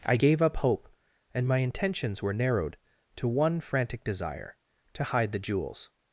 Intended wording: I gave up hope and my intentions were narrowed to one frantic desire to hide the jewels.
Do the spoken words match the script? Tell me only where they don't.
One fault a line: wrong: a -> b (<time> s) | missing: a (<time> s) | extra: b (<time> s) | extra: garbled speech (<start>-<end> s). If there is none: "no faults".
no faults